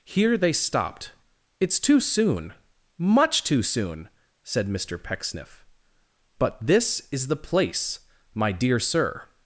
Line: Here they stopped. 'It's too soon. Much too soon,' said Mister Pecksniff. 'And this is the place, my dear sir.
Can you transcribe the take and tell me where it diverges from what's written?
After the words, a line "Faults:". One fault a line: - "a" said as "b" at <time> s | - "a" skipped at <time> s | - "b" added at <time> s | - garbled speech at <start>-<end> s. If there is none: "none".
Here they stopped. 'It's too soon. Much too soon,' said Mister Pecksniff. 'But this is the place, my dear sir.
Faults:
- "And" said as "But" at 6.4 s